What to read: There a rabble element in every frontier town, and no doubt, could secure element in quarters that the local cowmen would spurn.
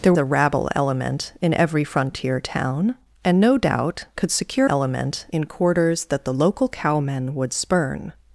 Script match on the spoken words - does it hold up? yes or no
yes